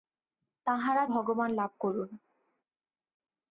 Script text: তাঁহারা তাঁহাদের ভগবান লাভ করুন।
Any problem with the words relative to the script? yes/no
yes